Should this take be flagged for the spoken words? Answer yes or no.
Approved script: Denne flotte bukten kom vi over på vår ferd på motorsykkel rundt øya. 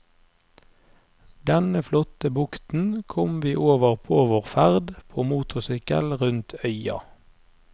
no